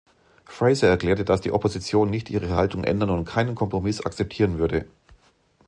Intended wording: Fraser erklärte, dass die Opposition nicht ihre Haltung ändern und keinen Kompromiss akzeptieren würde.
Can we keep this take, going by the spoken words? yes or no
yes